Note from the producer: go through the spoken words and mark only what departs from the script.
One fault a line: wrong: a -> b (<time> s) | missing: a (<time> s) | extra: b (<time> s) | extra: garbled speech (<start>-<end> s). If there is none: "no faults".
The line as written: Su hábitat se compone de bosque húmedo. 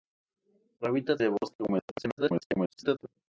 missing: se compone (1.2 s)
extra: garbled speech (1.9-3.0 s)